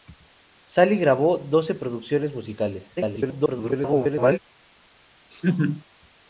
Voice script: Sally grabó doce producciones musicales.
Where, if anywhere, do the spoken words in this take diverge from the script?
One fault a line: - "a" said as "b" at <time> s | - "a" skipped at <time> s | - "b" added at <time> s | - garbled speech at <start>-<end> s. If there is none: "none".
- garbled speech at 3.0-4.4 s